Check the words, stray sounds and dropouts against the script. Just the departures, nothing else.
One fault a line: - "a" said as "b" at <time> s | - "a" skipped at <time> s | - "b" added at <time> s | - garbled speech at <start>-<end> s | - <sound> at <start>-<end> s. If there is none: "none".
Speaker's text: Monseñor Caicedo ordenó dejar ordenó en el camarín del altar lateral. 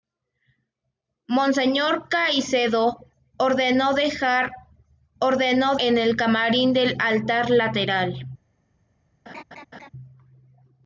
- laugh at 9.3-9.9 s